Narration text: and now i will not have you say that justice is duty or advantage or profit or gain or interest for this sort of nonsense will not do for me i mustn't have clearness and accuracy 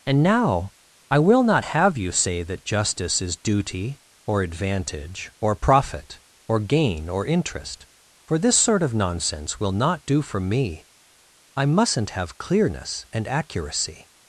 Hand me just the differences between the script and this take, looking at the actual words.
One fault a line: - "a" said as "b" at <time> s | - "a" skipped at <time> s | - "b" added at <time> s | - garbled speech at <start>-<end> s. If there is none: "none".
none